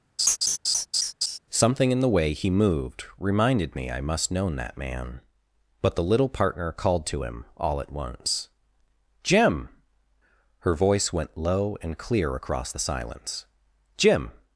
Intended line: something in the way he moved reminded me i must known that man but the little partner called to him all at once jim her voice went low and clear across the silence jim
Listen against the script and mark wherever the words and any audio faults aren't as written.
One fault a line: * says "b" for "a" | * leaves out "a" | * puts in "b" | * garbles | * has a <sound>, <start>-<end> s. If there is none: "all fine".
* has a laugh, 0.2-1.4 s